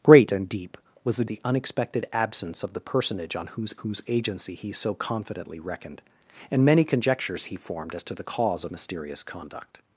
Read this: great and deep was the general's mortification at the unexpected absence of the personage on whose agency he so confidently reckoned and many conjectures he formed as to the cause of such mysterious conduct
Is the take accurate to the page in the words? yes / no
no